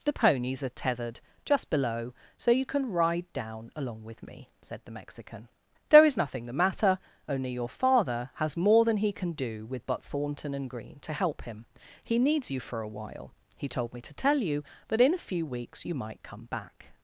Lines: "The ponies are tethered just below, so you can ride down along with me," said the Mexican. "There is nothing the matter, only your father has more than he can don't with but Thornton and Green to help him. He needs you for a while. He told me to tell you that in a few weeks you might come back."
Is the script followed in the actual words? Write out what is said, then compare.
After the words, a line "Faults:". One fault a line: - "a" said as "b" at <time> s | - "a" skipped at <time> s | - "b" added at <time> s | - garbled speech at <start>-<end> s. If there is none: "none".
"The ponies are tethered just below, so you can ride down along with me," said the Mexican. "There is nothing the matter, only your father has more than he can do with but Thornton and Green to help him. He needs you for a while. He told me to tell you that in a few weeks you might come back."
Faults:
- "don't" said as "do" at 9.3 s